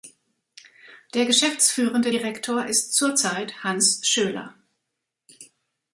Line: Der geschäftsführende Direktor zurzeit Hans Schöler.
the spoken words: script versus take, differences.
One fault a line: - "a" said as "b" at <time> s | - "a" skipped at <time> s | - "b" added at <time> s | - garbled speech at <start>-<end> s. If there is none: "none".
- "ist" added at 2.7 s